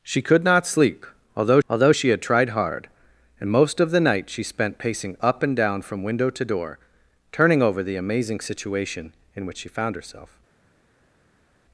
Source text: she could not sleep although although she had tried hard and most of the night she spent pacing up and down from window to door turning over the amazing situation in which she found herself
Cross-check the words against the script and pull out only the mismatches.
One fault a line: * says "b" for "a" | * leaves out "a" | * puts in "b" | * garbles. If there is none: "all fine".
all fine